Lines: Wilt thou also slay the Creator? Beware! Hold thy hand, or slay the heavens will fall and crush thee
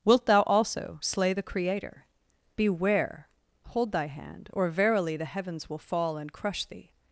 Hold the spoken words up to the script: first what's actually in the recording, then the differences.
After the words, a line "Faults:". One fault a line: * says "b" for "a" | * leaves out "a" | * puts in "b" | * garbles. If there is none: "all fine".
Wilt thou also slay the Creator? Beware! Hold thy hand, or verily the heavens will fall and crush thee
Faults:
* says "verily" for "slay"